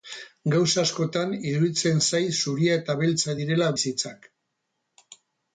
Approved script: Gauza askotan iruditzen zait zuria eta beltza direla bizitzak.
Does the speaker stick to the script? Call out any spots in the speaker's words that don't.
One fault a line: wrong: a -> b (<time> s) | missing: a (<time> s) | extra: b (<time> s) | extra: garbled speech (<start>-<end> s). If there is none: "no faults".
no faults